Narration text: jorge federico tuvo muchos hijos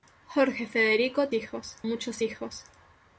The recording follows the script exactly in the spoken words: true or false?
false